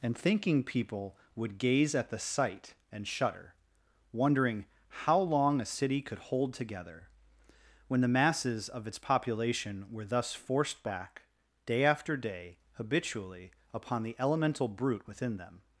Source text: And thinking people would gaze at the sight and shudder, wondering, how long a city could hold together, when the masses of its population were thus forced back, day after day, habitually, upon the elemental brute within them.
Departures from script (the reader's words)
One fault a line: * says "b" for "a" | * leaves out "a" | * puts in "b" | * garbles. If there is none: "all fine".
all fine